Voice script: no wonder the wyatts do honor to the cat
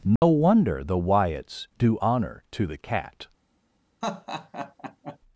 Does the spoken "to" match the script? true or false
true